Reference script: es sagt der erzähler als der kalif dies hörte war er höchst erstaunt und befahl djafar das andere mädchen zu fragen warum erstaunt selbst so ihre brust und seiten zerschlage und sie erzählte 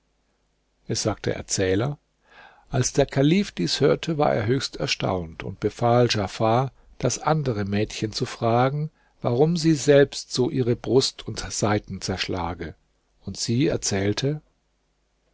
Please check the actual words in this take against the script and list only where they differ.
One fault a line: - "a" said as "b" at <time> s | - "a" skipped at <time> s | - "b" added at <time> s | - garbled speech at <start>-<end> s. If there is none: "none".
- "erstaunt" said as "sie" at 9.6 s